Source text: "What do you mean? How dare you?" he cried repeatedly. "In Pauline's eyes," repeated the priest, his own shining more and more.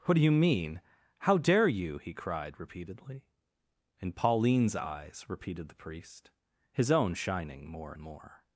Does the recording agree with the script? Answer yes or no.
no